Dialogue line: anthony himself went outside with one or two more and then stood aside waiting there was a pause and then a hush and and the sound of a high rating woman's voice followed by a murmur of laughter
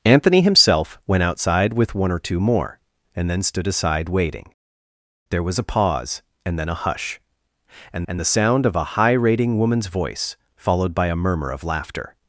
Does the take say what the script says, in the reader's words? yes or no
yes